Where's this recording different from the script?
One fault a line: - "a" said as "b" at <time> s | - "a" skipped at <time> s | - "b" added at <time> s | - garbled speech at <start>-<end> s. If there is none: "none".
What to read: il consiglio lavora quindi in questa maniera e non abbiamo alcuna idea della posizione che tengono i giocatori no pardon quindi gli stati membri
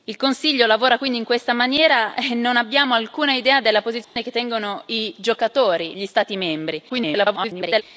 - "no pardon quindi" skipped at 5.9 s
- garbled speech at 6.9-7.8 s